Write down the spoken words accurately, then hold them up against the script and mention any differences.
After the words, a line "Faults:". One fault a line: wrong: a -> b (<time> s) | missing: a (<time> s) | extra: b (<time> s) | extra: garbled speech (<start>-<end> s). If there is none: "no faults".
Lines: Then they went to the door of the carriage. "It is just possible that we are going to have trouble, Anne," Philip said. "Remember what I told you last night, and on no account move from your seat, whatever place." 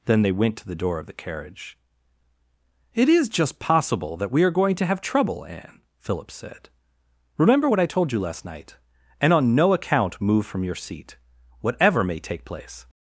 Then they went to the door of the carriage. "It is just possible that we are going to have trouble, Anne," Philip said. "Remember what I told you last night, and on no account move from your seat, whatever may take place."
Faults:
extra: may take (12.0 s)